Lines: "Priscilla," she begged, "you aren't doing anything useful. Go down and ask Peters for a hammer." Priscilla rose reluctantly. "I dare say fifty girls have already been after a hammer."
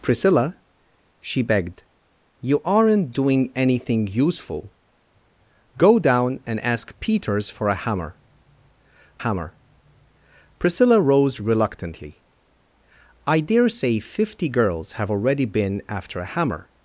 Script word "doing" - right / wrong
right